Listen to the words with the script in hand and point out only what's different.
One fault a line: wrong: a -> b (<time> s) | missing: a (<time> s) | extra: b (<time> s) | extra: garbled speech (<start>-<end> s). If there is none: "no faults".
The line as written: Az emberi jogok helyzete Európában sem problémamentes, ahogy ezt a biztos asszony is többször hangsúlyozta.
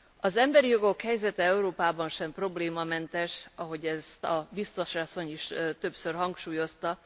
no faults